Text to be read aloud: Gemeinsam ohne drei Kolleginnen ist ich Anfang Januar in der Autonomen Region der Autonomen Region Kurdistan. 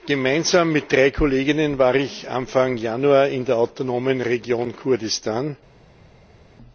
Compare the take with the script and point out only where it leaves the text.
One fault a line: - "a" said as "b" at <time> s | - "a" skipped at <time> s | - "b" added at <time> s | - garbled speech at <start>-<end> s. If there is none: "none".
- "ohne" said as "mit" at 0.7 s
- "ist" said as "war" at 1.8 s
- "der Autonomen Region" skipped at 4.8 s